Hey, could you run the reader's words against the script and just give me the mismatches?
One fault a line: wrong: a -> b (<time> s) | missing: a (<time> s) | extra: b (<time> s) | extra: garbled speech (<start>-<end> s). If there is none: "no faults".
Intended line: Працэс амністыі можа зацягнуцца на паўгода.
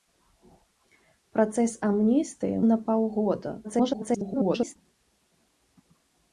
missing: можа зацягнуцца (2.6 s)
extra: garbled speech (3.6-4.8 s)